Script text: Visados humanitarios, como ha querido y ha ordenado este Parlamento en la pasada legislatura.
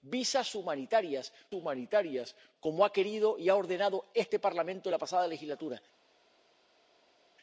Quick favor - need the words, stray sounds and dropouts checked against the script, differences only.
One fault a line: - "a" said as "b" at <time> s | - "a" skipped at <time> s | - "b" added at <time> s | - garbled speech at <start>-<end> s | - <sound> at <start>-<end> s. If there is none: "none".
- "humanitarios" added at 1.5 s